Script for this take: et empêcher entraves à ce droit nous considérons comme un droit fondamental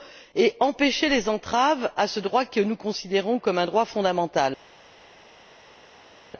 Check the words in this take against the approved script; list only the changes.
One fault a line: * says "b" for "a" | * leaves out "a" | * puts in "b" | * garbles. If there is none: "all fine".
* puts in "les"
* puts in "que"